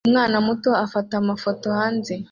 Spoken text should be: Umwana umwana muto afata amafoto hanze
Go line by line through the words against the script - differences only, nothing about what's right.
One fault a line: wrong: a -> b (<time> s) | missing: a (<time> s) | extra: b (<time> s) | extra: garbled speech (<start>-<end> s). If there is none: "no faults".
missing: umwana (0.4 s)